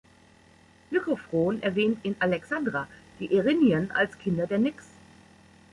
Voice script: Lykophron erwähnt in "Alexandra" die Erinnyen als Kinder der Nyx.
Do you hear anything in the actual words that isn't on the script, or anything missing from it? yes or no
no